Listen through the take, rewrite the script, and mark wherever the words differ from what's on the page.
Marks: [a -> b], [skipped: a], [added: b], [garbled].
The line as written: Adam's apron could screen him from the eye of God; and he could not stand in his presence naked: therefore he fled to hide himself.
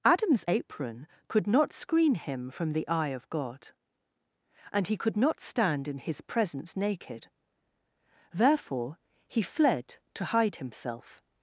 Adam's apron could [added: not] screen him from the eye of God; and he could not stand in his presence naked: therefore he fled to hide himself.